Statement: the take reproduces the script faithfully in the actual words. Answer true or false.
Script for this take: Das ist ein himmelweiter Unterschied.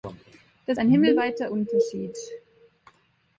false